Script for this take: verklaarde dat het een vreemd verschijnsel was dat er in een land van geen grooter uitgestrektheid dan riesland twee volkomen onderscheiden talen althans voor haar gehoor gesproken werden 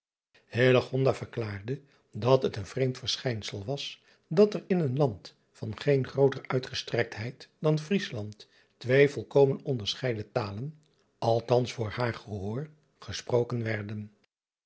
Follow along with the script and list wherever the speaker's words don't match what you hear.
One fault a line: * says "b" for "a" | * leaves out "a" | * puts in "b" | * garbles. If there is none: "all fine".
all fine